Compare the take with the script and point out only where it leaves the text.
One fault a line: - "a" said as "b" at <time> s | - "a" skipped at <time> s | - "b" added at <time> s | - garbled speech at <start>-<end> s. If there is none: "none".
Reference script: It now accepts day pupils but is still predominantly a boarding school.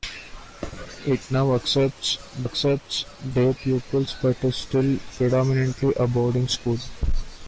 - "accepts" added at 2.4 s